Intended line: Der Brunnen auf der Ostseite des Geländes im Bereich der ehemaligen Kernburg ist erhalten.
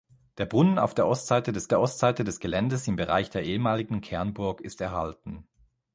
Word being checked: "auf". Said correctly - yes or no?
yes